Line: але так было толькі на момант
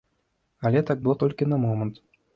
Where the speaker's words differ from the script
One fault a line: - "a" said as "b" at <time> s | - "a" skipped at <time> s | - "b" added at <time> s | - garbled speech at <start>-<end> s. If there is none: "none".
none